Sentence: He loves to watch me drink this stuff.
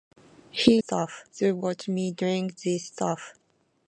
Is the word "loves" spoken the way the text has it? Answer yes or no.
no